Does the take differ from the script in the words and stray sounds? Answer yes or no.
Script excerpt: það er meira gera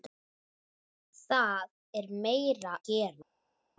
no